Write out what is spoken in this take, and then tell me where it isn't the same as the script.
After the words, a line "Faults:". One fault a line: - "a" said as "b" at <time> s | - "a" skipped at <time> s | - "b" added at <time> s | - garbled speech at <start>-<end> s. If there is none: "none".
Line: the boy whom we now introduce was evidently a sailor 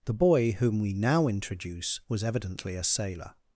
the boy whom we now introduce was evidently a sailor
Faults:
none